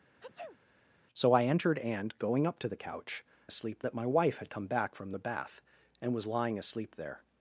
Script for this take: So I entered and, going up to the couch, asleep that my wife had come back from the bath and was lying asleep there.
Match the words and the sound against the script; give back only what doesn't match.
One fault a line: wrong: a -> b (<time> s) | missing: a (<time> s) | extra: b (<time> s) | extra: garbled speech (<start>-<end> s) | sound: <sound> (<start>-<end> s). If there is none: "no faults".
sound: sneeze (0.2-0.6 s)